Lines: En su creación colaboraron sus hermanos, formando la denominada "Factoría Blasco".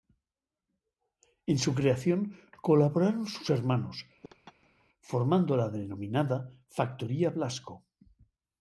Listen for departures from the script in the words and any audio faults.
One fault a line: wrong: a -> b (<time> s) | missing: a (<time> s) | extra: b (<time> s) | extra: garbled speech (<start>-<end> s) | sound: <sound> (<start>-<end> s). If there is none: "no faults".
sound: laugh (4.2-4.9 s)